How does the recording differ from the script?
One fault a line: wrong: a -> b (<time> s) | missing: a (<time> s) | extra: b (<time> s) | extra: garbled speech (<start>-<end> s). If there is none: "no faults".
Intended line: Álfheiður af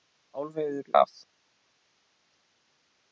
no faults